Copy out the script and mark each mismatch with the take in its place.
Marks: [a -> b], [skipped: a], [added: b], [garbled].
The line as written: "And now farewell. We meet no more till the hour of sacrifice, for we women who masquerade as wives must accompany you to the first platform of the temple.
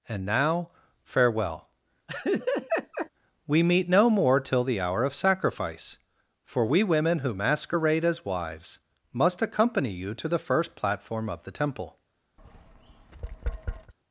"And now farewell. We meet no more till the hour of sacrifice, for we women who masquerade as wives must accompany you to the first platform of the temple.